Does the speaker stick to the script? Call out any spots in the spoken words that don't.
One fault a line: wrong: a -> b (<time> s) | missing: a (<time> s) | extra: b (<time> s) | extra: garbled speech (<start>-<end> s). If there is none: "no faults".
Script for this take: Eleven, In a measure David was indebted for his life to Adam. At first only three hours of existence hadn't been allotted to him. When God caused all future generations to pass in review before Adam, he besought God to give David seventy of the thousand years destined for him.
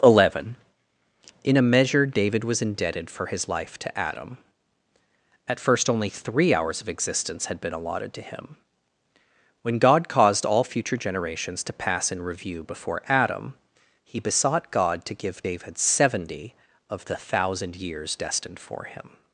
wrong: hadn't -> had (7.5 s)